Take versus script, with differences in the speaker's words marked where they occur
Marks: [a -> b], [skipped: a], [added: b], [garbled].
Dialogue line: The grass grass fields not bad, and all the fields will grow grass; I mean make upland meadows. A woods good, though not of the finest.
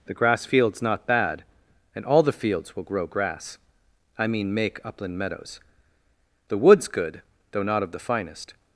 The grass [skipped: grass] fields not bad, and all the fields will grow grass; I mean make upland meadows. [A -> The] woods good, though not of the finest.